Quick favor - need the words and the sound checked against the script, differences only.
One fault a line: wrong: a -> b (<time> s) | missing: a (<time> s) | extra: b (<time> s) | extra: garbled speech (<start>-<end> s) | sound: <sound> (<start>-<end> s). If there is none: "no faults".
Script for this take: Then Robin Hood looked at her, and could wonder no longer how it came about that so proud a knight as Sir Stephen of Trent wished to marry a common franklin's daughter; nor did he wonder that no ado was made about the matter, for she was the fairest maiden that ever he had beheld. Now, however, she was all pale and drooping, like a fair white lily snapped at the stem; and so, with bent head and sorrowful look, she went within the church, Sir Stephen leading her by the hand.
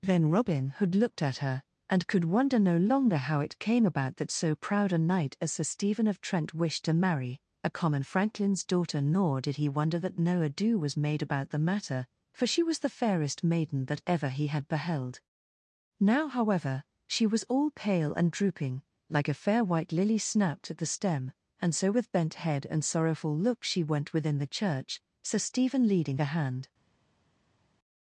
missing: her by (26.2 s)